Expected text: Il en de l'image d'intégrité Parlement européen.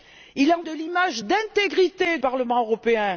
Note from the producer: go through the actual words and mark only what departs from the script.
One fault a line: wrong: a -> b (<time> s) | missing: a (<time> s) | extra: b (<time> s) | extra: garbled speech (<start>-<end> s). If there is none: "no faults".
no faults